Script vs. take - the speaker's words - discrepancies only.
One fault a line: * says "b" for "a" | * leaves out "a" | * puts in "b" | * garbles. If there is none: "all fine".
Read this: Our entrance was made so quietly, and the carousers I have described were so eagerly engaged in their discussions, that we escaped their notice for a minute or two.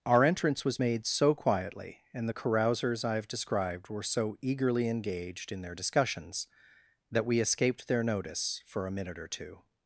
all fine